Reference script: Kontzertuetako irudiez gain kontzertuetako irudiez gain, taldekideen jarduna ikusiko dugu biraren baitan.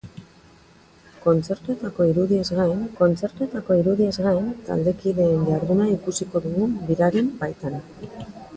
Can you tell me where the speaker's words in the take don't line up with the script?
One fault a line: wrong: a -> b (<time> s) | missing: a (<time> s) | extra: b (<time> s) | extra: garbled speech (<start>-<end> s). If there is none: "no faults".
no faults